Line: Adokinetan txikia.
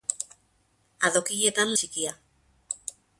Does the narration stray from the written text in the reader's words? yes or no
no